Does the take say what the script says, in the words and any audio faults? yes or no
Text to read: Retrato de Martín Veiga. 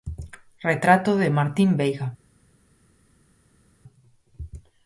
yes